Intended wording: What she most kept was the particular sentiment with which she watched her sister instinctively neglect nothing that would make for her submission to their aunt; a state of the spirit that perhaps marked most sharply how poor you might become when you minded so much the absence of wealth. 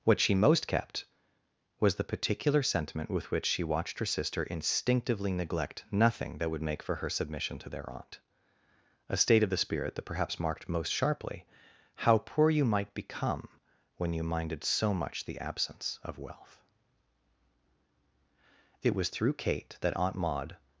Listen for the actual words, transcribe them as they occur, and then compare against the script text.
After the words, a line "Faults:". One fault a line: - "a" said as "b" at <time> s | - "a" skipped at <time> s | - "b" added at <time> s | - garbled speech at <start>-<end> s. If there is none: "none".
What she most kept was the particular sentiment with which she watched her sister instinctively neglect nothing that would make for her submission to their aunt; a state of the spirit that perhaps marked most sharply how poor you might become when you minded so much the absence of wealth. It was through Kate that Aunt Maud
Faults:
- "It was through Kate that Aunt Maud" added at 18.8 s